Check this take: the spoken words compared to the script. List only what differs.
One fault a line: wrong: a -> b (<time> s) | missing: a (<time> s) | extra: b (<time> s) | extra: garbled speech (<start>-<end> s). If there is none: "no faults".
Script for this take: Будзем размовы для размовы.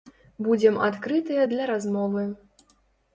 wrong: размовы -> адкрытыя (0.9 s)